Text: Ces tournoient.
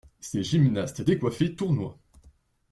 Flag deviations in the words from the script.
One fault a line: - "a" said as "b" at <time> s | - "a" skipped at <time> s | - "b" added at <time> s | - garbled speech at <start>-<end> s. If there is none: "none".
- "gymnastes décoiffés" added at 0.4 s